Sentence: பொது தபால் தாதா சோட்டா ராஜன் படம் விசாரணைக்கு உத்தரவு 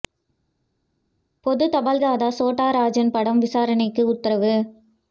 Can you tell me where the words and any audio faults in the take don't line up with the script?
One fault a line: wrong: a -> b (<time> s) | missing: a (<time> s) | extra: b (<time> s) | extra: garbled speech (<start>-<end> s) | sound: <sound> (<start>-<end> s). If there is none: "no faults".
no faults